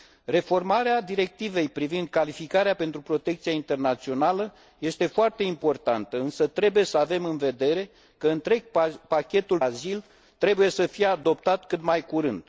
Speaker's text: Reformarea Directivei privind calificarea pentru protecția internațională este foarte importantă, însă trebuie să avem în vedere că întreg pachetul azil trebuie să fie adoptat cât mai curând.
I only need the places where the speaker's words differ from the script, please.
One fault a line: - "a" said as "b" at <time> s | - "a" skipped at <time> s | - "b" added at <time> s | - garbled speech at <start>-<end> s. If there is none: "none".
none